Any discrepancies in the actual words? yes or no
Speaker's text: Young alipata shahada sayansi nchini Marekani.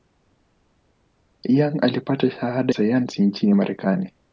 no